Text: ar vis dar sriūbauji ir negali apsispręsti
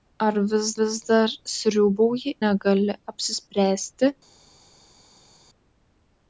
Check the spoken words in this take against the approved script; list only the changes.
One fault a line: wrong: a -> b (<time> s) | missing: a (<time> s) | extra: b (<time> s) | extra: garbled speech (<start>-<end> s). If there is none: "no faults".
extra: vis (0.8 s)
missing: ir (2.3 s)